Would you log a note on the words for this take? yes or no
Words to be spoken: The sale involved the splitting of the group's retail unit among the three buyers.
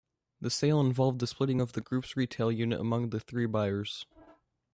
no